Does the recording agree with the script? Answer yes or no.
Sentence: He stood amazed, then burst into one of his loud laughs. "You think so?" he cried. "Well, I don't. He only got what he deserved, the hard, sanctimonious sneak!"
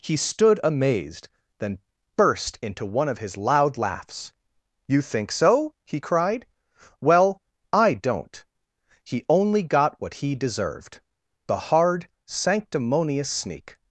yes